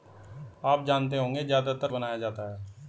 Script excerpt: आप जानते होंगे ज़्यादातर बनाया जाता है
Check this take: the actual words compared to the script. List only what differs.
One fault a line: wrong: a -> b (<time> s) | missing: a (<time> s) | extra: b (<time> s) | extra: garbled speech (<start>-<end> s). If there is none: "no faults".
no faults